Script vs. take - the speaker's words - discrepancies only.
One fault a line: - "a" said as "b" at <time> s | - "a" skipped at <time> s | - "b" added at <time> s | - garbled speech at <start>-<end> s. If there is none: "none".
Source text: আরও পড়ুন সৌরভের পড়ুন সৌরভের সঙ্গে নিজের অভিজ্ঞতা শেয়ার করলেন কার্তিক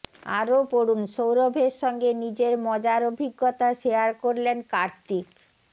- "পড়ুন সৌরভের" skipped at 1.7 s
- "মজার" added at 2.7 s